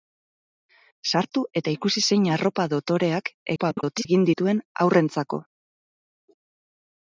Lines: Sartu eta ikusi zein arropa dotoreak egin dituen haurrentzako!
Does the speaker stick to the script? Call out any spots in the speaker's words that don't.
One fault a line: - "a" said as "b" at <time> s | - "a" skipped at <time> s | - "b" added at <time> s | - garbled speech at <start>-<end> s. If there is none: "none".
- garbled speech at 3.6-4.1 s